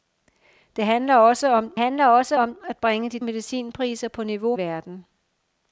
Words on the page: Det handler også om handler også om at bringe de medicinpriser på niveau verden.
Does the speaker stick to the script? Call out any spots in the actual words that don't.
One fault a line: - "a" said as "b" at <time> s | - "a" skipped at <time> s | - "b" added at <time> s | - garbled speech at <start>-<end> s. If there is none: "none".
none